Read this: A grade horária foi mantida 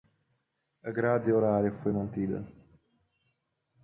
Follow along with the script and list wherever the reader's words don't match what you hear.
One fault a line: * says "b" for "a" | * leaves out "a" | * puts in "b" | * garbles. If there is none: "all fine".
all fine